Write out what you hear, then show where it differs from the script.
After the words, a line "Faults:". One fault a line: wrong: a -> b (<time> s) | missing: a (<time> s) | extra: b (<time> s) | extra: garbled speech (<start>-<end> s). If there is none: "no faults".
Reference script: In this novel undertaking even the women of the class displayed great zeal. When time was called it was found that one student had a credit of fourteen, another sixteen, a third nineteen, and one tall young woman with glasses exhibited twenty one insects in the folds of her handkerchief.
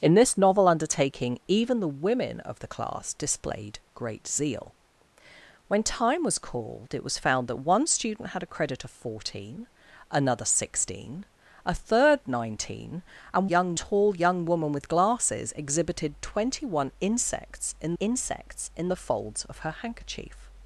In this novel undertaking even the women of the class displayed great zeal. When time was called it was found that one student had a credit of fourteen, another sixteen, a third nineteen, and young tall young woman with glasses exhibited twenty one insects in insects in the folds of her handkerchief.
Faults:
wrong: one -> young (13.4 s)
extra: insects in (18.0 s)